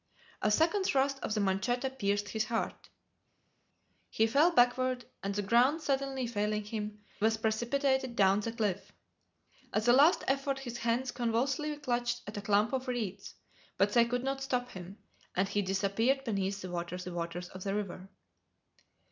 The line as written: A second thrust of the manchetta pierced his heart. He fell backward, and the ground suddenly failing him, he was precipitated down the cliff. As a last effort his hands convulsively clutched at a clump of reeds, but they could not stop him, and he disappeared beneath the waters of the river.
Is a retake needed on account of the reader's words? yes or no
yes